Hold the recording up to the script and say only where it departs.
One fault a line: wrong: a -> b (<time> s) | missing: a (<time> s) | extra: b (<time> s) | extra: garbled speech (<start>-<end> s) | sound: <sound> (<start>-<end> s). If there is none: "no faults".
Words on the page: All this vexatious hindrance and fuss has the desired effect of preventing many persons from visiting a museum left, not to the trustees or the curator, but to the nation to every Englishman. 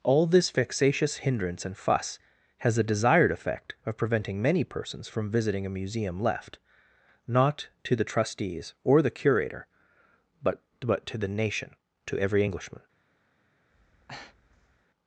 extra: but (10.8 s)
sound: breath (13.7-14.9 s)